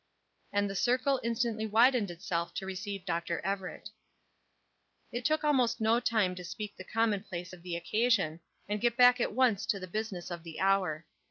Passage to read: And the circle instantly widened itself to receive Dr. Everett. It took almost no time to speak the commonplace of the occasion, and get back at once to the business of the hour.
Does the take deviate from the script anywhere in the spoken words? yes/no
no